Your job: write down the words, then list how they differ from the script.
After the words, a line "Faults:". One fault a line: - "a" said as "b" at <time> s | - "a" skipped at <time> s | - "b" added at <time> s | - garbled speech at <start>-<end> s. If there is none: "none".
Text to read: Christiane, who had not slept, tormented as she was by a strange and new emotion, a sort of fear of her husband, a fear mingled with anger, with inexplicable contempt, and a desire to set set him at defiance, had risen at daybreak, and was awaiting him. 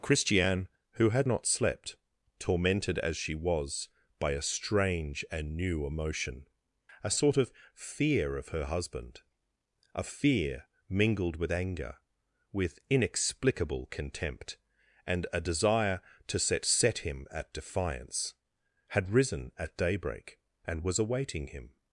Christiane, who had not slept, tormented as she was by a strange and new emotion, a sort of fear of her husband, a fear mingled with anger, with inexplicable contempt, and a desire to set set him at defiance, had risen at daybreak, and was awaiting him.
Faults:
none